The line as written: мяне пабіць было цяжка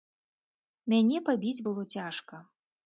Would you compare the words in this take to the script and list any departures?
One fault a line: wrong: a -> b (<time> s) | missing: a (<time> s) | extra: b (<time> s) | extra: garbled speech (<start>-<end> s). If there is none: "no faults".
no faults